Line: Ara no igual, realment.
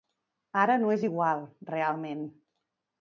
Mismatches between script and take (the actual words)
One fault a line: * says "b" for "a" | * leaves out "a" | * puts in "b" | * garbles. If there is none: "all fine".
* puts in "és"